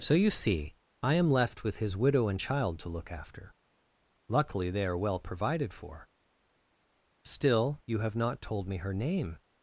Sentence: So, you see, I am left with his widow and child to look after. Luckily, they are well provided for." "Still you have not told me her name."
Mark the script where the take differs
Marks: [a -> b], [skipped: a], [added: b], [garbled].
So, you see, I am left with his widow and child to look after. Luckily, they are well provided for." "Still you have not told me her name."